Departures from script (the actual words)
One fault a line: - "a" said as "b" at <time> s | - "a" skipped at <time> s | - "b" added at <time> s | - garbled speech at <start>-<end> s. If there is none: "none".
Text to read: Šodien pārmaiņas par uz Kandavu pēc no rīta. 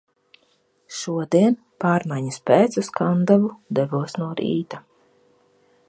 - "par" said as "pēc" at 2.5 s
- "pēc" said as "devos" at 3.8 s